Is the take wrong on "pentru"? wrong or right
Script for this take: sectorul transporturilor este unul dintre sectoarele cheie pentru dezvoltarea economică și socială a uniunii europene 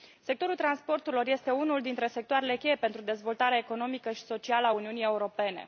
right